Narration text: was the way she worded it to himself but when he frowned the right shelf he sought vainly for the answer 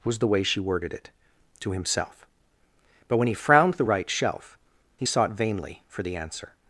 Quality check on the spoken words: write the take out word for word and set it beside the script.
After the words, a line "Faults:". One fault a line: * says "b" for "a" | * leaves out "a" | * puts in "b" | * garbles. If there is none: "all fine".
was the way she worded it to himself but when he frowned the right shelf he sought vainly for the answer
Faults:
all fine